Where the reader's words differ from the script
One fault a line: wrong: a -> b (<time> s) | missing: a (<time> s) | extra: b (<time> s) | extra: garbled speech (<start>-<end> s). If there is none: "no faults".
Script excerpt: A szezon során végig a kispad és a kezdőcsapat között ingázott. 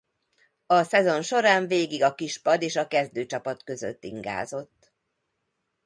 no faults